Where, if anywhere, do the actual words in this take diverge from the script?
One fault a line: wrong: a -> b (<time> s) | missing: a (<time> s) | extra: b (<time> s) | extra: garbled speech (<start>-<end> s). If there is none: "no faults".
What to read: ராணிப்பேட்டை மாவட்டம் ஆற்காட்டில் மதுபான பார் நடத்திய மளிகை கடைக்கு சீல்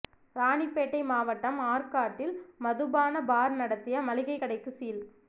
no faults